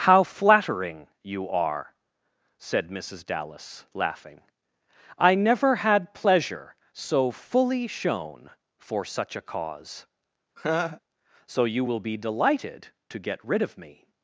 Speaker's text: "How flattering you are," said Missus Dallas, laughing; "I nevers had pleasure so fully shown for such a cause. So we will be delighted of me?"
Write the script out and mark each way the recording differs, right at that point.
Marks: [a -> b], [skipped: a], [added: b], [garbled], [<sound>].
"How flattering you are," said Missus Dallas, laughing; "I [nevers -> never] had pleasure so fully shown for such a cause. [laugh] So [we -> you] will be delighted [added: to get rid] of me?"